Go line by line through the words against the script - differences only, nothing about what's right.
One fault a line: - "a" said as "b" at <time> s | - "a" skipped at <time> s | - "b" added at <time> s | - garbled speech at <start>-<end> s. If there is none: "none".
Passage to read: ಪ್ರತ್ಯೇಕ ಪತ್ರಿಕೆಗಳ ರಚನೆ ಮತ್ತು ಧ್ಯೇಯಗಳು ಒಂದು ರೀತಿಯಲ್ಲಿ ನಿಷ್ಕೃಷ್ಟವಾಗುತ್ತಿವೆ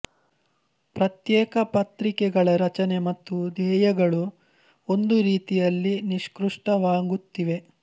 none